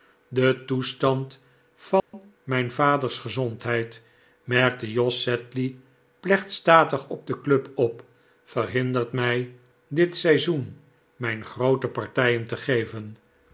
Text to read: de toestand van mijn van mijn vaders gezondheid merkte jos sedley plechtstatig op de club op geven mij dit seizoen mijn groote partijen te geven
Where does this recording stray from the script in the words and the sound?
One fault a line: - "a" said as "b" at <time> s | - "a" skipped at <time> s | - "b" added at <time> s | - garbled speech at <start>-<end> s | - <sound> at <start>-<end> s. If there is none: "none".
- dropout at 2.0-2.1 s
- "van mijn" skipped at 2.7 s
- "geven" said as "verhindert" at 8.4 s